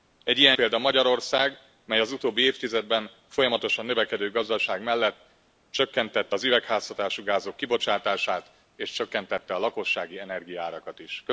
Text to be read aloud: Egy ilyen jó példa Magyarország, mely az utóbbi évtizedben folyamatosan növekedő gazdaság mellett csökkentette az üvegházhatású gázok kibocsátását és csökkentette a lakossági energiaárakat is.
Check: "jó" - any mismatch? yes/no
yes